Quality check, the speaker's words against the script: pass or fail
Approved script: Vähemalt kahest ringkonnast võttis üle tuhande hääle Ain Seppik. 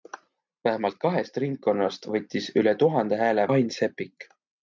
pass